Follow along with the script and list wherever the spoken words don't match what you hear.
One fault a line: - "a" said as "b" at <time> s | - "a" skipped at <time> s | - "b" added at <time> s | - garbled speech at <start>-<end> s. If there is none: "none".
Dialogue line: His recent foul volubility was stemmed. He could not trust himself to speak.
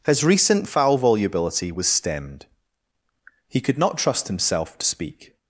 none